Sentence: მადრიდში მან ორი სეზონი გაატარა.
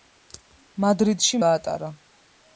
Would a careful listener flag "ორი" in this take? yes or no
yes